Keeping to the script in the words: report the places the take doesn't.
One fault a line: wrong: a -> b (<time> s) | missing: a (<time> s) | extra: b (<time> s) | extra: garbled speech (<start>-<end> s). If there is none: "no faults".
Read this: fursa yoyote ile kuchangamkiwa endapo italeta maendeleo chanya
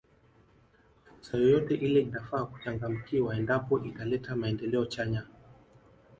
extra: inafaa (2.0 s)